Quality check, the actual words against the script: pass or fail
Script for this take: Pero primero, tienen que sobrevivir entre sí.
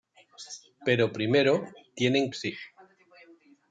fail